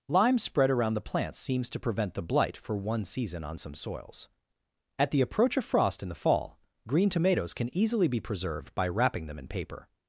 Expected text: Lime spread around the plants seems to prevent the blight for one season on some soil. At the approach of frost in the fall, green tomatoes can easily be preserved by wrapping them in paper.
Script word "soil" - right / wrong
wrong